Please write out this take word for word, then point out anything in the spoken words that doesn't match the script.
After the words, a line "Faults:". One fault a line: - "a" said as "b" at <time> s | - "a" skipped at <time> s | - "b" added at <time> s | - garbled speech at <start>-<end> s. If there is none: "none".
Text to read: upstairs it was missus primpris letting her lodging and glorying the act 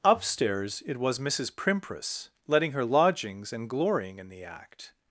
upstairs it was missus primpris letting her lodgings and glorying in the act
Faults:
- "lodging" said as "lodgings" at 2.8 s
- "in" added at 4.2 s